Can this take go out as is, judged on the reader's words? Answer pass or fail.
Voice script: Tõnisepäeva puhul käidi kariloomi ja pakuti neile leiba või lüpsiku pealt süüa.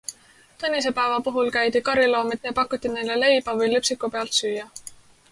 pass